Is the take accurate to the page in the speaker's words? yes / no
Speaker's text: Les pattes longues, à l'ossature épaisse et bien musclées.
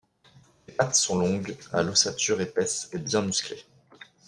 no